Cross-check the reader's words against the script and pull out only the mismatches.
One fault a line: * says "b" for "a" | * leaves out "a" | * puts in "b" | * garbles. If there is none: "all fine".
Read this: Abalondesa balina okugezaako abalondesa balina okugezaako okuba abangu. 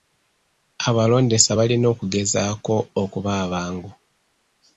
* leaves out "abalondesa balina okugezaako"